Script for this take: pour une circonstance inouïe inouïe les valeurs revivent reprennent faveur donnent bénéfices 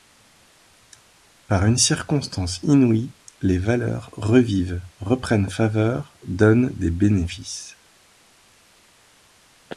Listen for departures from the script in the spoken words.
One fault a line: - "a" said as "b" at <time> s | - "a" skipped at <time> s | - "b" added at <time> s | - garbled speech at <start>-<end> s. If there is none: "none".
- "pour" said as "par" at 1.4 s
- "inouïe" skipped at 3.1 s
- "des" added at 6.8 s